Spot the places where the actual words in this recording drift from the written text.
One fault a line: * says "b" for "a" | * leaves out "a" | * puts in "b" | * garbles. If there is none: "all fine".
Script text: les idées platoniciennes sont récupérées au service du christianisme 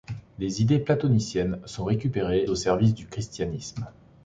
all fine